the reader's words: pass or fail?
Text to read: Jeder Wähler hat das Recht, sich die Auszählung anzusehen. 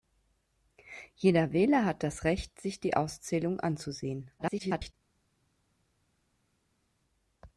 fail